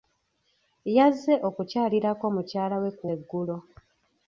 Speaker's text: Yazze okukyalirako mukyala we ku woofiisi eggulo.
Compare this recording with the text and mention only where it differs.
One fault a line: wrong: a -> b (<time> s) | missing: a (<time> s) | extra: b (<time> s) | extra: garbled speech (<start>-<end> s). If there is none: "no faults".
missing: woofiisi (3.0 s)